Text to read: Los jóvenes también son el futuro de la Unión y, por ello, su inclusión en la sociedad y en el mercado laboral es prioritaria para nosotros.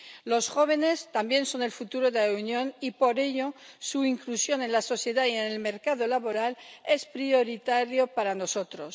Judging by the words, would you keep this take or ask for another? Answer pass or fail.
pass